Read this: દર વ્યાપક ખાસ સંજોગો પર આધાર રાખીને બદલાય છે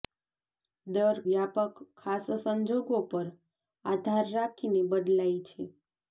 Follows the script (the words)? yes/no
yes